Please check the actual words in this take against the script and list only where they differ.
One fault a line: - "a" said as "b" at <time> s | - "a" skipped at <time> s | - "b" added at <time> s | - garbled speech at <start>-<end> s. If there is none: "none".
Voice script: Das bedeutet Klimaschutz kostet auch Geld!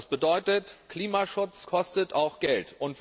none